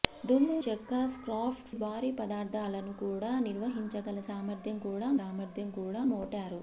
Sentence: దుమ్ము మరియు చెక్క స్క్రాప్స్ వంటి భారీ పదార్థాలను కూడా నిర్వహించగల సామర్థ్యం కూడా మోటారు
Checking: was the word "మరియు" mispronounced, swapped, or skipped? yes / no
yes